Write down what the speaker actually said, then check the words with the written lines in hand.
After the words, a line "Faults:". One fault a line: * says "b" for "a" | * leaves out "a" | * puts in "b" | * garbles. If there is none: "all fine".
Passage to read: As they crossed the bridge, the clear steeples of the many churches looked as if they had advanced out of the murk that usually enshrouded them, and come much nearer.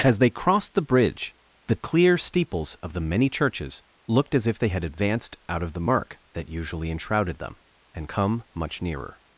As they crossed the bridge, the clear steeples of the many churches looked as if they had advanced out of the murk that usually enshrouded them, and come much nearer.
Faults:
all fine